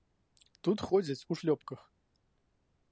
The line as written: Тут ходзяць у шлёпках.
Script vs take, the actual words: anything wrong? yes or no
no